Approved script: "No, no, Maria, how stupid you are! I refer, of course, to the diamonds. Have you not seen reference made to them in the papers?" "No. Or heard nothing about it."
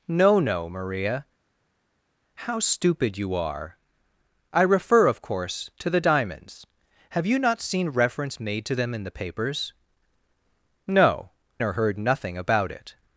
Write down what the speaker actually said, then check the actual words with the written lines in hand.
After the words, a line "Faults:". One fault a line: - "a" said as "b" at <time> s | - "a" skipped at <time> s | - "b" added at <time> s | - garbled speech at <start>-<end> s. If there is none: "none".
"No, no, Maria, how stupid you are! I refer, of course, to the diamonds. Have you not seen reference made to them in the papers?" "No. Or heard nothing about it."
Faults:
none